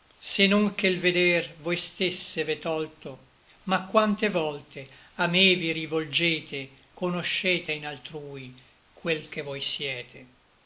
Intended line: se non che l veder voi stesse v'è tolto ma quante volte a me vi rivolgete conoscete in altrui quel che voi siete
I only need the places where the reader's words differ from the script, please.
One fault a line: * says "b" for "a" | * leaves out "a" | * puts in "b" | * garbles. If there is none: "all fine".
all fine